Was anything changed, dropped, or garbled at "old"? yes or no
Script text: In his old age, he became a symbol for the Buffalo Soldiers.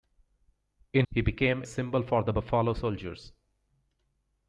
yes